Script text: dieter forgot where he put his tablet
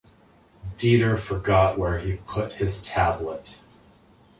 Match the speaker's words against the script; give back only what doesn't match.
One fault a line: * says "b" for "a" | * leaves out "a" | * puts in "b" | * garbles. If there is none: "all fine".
all fine